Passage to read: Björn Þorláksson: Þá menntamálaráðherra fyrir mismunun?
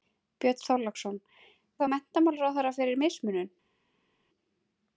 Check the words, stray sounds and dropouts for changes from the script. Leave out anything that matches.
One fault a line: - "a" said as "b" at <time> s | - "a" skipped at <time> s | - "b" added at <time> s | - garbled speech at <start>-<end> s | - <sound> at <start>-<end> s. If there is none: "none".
none